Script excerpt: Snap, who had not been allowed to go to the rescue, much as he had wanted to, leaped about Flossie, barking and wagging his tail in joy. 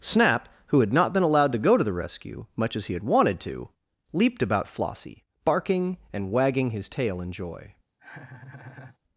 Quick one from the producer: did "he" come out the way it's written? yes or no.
yes